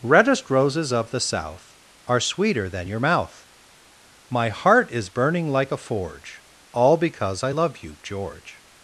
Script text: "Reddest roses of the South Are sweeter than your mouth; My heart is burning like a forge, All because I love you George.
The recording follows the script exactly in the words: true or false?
true